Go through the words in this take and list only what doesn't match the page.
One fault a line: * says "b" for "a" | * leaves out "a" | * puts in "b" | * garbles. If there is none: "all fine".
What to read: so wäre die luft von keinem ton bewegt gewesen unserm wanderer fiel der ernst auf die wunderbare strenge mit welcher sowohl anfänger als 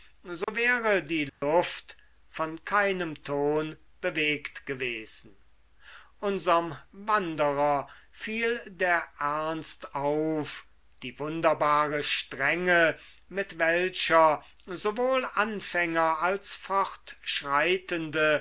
all fine